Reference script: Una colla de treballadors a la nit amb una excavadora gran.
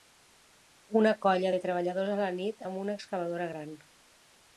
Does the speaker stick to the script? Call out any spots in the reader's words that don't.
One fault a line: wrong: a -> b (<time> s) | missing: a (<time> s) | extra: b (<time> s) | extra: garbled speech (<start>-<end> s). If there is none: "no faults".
no faults